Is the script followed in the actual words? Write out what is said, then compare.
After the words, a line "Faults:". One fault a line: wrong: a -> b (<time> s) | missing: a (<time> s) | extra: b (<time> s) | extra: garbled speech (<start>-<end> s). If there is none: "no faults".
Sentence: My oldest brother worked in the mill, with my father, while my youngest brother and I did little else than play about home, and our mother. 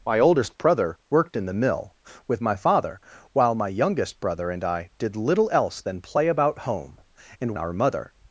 My oldest brother worked in the mill, with my father, while my youngest brother and I did little else than play about home, and our mother.
Faults:
no faults